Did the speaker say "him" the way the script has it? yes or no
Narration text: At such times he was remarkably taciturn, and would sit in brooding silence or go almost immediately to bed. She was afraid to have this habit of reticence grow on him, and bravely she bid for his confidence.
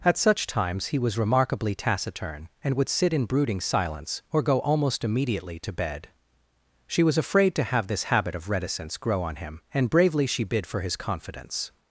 yes